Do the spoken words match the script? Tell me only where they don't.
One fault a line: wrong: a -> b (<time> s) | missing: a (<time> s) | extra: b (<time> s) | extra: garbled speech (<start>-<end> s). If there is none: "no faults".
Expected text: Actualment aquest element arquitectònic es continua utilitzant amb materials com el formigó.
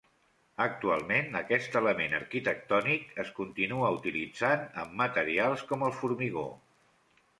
no faults